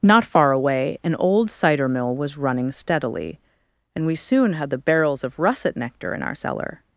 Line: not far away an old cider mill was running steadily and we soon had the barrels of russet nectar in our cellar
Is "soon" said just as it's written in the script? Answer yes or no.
yes